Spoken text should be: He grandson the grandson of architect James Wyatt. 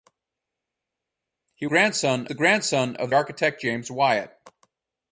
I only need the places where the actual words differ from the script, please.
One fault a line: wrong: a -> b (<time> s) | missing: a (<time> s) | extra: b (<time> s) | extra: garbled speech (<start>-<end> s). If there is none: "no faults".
no faults